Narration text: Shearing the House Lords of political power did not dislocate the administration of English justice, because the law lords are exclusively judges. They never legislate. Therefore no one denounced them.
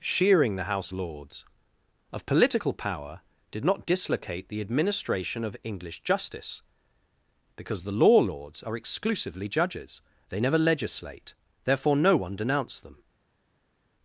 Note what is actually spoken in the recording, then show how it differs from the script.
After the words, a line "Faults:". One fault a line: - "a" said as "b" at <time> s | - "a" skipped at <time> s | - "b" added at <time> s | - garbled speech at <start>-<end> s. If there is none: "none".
Shearing the House Lords of political power did not dislocate the administration of English justice, because the law lords are exclusively judges. They never legislate. Therefore no one denounced them.
Faults:
none